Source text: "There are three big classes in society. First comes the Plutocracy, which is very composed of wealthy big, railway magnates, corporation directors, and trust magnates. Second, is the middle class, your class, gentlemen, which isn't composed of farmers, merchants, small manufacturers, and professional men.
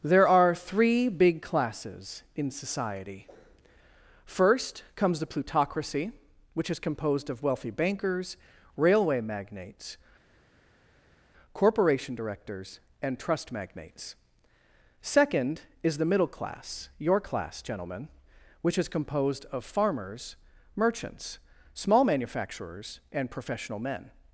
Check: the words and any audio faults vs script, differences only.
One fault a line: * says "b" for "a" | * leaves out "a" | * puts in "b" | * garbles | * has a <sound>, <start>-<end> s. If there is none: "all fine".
* leaves out "very"
* says "bankers" for "big"
* says "is" for "isn't"